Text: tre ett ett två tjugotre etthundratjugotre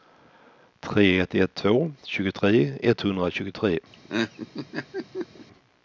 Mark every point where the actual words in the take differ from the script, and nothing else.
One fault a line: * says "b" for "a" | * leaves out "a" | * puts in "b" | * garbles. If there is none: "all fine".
all fine